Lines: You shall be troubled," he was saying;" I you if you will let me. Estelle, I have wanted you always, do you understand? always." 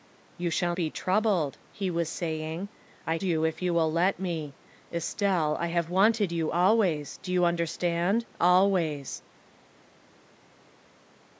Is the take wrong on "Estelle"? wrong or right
right